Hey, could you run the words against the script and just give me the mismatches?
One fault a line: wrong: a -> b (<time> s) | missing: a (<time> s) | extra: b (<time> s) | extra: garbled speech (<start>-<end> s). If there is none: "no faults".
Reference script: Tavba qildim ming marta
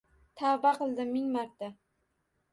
no faults